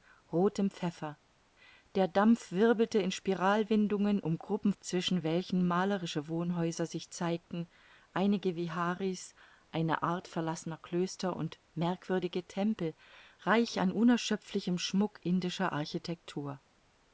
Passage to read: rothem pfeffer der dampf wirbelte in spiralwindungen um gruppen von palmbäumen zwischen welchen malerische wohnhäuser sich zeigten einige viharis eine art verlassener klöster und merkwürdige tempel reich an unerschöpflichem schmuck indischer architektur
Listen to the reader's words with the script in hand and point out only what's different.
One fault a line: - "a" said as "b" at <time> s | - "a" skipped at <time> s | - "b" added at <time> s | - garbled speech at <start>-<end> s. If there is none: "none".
- "von palmbäumen" skipped at 4.7 s